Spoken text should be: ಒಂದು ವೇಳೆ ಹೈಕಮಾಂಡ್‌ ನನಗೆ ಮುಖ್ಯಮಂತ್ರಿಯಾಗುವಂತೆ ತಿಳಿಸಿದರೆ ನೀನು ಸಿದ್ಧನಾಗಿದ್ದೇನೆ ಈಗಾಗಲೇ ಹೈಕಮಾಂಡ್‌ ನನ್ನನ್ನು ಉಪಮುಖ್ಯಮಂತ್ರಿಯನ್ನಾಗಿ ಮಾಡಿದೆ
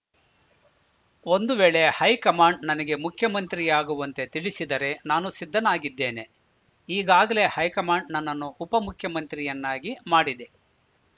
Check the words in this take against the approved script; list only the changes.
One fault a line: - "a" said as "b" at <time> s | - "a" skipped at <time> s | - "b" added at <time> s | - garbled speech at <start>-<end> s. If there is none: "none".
- "ನೀನು" said as "ನಾನು" at 5.0 s